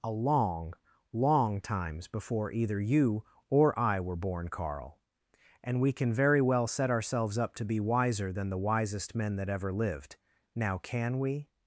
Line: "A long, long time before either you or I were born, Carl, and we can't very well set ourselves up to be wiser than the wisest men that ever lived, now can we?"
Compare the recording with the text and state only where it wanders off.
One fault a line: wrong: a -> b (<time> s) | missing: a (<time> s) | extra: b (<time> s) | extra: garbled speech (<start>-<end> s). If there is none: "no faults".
wrong: time -> times (1.6 s)
wrong: can't -> can (5.9 s)